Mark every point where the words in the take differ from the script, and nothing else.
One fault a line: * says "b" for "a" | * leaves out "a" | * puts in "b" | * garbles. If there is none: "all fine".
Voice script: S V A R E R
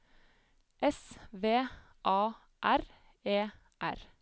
all fine